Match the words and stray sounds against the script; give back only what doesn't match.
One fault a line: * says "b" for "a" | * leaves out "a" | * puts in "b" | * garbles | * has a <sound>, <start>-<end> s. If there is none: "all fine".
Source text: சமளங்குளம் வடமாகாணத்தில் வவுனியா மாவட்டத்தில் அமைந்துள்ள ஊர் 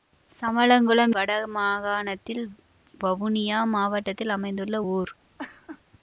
* has a laugh, 5.4-5.8 s